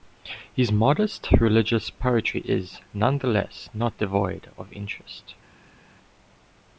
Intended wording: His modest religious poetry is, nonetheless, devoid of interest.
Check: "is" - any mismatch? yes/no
no